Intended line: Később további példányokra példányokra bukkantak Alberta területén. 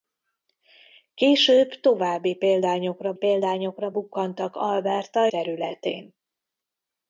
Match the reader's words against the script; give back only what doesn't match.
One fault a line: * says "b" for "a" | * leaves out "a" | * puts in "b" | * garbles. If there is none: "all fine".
all fine